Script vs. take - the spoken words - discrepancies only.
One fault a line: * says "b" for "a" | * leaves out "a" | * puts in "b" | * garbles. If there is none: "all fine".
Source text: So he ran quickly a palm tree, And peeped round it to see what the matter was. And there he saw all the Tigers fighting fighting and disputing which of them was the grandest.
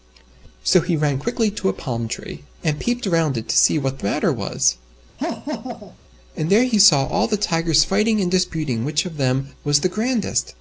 * puts in "to"
* leaves out "fighting"